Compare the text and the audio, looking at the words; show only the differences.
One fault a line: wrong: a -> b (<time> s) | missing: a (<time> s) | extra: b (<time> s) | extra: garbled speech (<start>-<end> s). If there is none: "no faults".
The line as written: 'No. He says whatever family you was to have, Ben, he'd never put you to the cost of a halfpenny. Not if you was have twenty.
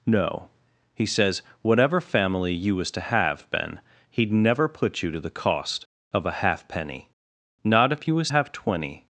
no faults